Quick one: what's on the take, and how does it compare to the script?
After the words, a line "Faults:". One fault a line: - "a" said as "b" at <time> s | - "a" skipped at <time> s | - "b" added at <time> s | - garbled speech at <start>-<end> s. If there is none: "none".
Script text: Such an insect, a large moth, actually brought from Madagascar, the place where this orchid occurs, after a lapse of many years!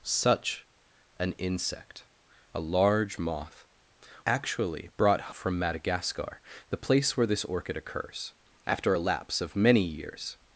Such an insect, a large moth, actually brought from Madagascar, the place where this orchid occurs, after a lapse of many years!
Faults:
none